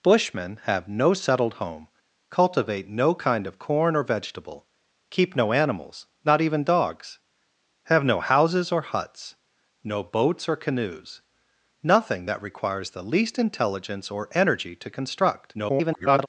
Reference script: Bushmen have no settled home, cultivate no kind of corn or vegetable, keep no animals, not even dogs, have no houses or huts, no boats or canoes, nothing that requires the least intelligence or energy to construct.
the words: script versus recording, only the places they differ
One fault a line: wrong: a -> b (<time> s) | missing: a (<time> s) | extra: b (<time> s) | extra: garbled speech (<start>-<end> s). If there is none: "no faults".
extra: garbled speech (15.5-16.3 s)